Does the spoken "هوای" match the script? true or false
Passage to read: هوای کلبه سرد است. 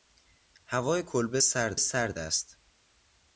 true